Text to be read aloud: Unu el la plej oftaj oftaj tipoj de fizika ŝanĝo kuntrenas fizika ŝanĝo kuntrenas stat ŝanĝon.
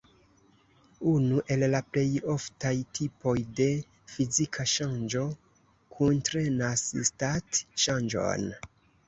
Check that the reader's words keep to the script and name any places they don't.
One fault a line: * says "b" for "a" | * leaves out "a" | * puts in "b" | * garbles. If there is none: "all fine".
* leaves out "oftaj"
* leaves out "fizika ŝanĝo kuntrenas"